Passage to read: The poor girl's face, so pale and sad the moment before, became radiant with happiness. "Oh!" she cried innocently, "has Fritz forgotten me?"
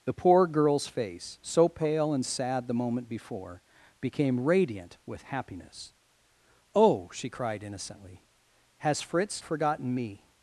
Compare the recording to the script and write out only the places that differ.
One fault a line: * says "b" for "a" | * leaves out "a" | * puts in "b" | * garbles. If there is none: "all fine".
all fine